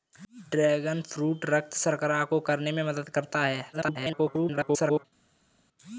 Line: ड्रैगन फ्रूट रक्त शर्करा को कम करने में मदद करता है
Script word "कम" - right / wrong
wrong